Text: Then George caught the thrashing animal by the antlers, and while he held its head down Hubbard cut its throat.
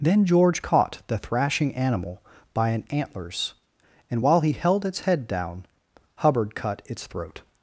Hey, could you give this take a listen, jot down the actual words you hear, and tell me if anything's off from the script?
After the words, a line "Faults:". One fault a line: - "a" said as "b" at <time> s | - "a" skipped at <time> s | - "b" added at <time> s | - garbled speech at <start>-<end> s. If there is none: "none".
Then George caught the thrashing animal by an antlers, and while he held its head down Hubbard cut its throat.
Faults:
- "the" said as "an" at 2.7 s